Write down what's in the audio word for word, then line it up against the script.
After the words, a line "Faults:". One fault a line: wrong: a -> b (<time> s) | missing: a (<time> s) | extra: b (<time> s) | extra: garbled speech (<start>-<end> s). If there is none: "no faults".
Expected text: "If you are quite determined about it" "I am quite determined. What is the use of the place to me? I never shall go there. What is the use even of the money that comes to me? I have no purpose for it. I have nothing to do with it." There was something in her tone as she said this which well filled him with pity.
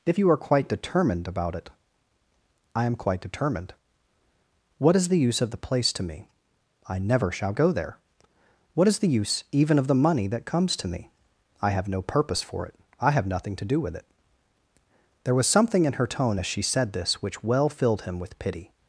"If you are quite determined about it" "I am quite determined. What is the use of the place to me? I never shall go there. What is the use even of the money that comes to me? I have no purpose for it. I have nothing to do with it." There was something in her tone as she said this which well filled him with pity.
Faults:
no faults